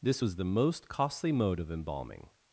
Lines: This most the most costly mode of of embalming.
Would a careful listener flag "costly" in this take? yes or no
no